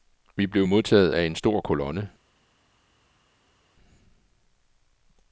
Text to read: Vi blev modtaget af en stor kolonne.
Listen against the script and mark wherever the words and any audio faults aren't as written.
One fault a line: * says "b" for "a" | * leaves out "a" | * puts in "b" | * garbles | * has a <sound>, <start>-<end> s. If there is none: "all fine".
all fine